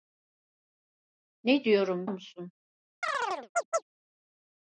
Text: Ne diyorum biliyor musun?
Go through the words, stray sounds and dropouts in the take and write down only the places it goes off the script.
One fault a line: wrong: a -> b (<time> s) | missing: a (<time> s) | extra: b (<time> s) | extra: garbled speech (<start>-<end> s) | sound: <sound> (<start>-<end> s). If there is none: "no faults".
missing: biliyor (2.1 s)
sound: chirp (3.0-3.8 s)